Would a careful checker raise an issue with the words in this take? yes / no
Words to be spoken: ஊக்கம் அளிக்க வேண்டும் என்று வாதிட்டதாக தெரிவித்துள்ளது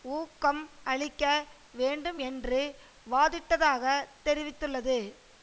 no